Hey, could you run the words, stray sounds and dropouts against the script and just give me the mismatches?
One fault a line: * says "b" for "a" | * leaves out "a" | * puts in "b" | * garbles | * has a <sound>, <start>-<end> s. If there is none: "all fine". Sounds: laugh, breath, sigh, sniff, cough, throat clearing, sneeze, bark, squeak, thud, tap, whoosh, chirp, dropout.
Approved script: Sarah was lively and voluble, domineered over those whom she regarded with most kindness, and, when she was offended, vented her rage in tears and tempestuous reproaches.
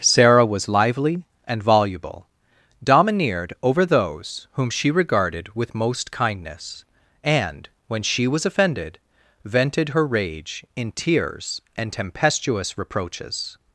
all fine